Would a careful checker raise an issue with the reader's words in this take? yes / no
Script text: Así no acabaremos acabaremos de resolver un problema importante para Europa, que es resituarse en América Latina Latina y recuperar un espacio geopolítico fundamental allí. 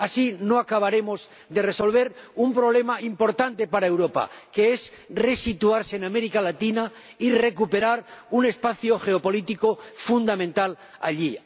yes